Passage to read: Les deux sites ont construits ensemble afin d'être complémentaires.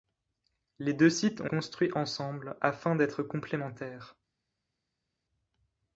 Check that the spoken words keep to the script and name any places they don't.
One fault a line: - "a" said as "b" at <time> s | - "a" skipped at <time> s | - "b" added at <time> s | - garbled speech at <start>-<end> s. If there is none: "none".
none